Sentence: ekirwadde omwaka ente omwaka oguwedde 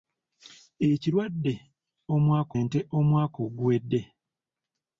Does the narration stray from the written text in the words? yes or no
no